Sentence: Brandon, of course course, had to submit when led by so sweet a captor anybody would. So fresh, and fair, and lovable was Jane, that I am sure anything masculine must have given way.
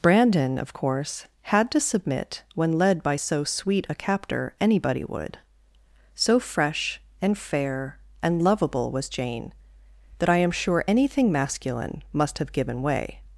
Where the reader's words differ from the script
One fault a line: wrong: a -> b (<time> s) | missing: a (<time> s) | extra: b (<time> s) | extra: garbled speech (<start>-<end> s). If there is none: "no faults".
missing: course (1.3 s)